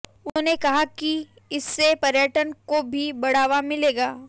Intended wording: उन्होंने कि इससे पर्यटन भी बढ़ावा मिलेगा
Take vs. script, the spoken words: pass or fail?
fail